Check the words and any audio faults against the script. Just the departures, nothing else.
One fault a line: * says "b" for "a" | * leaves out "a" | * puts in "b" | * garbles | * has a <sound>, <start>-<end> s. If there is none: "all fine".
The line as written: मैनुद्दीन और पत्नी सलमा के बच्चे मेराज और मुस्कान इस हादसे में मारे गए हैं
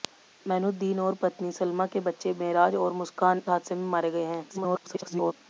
* leaves out "इस"
* garbles